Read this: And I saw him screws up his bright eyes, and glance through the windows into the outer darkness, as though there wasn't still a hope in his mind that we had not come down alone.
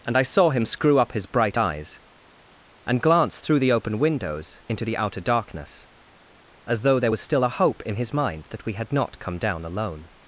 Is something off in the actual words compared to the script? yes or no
yes